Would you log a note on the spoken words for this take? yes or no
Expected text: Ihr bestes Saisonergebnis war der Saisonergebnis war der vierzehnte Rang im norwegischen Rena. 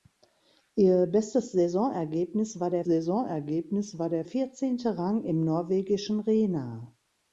no